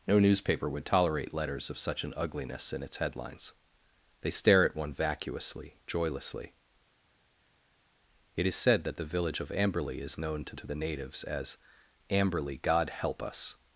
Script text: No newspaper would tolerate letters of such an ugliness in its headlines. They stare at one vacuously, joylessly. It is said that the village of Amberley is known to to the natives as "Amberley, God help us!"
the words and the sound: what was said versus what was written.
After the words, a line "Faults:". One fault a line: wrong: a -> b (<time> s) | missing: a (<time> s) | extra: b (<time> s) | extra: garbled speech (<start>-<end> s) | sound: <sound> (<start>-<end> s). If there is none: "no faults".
No newspaper would tolerate letters of such an ugliness in its headlines. They stare at one vacuously, joylessly. It is said that the village of Amberley is known to to the natives as "Amberley, God help us!"
Faults:
no faults